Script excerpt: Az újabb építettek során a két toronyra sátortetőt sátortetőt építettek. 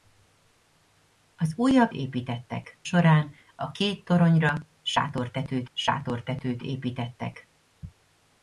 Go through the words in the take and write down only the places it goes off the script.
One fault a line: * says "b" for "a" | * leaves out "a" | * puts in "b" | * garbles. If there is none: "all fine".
all fine